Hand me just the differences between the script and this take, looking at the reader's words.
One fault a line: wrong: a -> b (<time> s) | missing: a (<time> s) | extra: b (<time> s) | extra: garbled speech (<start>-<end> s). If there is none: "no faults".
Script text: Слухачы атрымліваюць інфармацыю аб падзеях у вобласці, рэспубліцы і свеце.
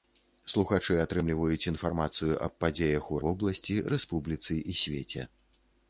no faults